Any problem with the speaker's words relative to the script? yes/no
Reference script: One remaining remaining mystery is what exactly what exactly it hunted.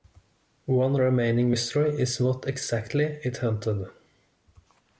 yes